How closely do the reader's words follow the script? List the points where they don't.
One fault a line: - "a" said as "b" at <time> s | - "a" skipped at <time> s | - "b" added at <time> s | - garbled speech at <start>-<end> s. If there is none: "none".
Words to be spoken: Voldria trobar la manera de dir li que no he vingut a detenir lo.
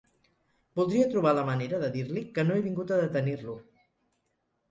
none